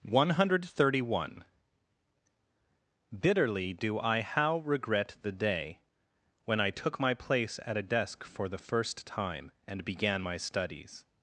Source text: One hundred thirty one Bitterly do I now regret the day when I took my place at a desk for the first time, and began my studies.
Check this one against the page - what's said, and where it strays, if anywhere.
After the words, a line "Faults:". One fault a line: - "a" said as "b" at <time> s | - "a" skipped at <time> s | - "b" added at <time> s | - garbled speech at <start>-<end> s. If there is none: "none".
One hundred thirty one Bitterly do I how regret the day when I took my place at a desk for the first time, and began my studies.
Faults:
- "now" said as "how" at 4.2 s